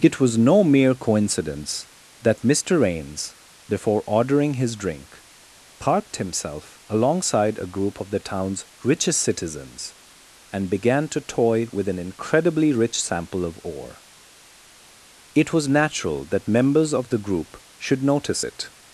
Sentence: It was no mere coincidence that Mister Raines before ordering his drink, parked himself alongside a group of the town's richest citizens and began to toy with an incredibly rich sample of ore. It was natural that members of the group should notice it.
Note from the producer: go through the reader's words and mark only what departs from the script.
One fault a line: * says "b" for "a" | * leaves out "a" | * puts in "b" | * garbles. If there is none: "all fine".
all fine